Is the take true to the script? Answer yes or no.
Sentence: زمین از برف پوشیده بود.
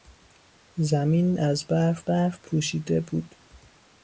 no